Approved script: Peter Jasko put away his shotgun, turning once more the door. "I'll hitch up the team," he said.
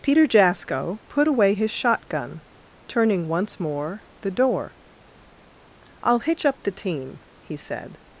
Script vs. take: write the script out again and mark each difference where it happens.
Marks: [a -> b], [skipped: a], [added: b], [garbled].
Peter Jasko put away his shotgun, turning once more the door. "I'll hitch up the team," he said.